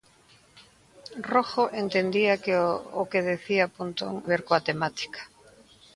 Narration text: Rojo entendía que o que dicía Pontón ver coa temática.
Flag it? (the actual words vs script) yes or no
no